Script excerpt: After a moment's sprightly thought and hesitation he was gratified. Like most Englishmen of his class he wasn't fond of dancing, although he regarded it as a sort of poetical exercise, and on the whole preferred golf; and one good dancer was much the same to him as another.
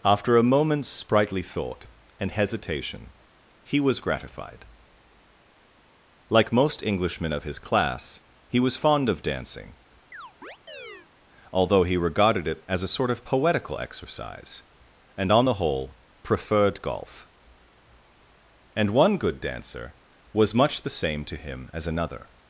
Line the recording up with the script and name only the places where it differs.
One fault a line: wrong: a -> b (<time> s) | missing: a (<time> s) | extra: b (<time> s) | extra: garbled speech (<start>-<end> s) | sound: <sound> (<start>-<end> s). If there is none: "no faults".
wrong: wasn't -> was (8.6 s)
sound: chirp (10.1-11.1 s)